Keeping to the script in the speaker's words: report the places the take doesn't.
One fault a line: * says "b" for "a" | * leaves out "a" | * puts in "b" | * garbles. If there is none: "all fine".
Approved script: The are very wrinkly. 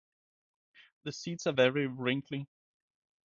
* puts in "seeds"